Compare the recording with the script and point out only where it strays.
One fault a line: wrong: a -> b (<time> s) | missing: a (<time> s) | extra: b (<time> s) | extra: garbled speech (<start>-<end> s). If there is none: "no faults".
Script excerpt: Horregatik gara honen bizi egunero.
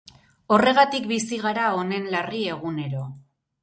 extra: bizi (1.1 s)
wrong: bizi -> larri (2.2 s)